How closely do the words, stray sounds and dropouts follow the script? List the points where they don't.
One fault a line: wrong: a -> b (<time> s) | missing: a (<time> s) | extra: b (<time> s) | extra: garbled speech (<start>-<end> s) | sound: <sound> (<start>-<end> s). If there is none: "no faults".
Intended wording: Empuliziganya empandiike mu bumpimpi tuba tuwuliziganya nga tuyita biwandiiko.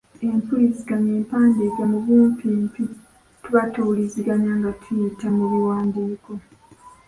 extra: mu (5.4 s)